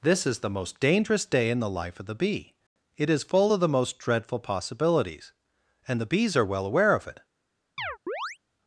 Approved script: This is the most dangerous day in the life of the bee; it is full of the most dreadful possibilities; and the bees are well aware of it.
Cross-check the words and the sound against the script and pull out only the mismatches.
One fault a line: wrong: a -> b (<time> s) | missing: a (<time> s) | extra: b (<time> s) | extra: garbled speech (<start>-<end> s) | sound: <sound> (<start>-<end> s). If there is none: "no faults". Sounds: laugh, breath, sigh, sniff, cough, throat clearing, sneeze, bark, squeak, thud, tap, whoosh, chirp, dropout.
sound: chirp (7.8-8.4 s)